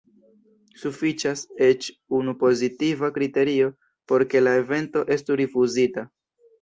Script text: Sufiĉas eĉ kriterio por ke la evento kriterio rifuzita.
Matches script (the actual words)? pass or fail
fail